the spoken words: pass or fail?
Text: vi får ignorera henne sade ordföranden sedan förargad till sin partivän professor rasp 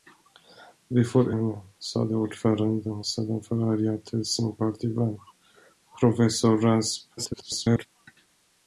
fail